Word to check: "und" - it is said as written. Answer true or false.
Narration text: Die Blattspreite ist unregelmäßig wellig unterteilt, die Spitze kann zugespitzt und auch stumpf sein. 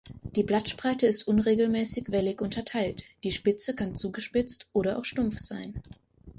false